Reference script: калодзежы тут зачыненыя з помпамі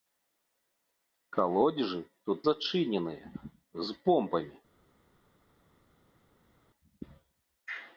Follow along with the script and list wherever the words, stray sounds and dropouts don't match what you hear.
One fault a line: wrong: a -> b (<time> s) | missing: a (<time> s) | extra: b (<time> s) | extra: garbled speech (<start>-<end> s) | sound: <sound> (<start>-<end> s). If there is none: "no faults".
no faults